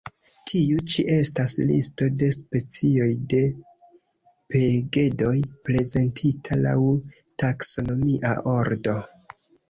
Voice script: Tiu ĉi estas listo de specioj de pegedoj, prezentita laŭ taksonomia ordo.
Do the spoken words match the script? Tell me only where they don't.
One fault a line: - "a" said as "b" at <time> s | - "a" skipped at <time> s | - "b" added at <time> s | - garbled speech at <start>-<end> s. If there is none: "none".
none